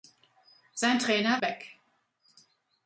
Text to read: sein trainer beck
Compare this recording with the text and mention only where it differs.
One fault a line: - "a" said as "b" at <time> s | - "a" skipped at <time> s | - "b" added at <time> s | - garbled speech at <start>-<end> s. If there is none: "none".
none